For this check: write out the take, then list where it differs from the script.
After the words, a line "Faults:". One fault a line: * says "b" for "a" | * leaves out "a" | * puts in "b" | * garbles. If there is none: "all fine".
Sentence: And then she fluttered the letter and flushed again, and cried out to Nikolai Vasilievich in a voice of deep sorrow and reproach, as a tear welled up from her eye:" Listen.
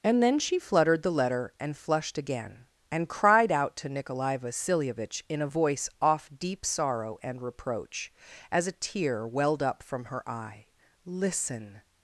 And then she fluttered the letter and flushed again, and cried out to Nikolai Vasilievich in a voice off deep sorrow and reproach, as a tear welled up from her eye:" Listen.
Faults:
* says "off" for "of"